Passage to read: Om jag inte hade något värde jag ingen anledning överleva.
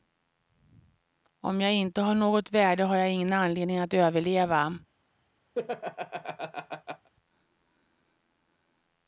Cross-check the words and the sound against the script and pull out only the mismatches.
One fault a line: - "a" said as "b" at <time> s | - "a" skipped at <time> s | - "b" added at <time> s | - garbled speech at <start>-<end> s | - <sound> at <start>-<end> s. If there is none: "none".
- "hade" said as "har" at 2.0 s
- "har" added at 2.8 s
- "att" added at 3.8 s
- laugh at 5.5-7.1 s